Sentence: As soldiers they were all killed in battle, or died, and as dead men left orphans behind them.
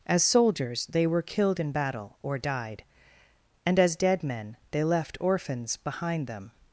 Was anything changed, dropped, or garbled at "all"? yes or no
yes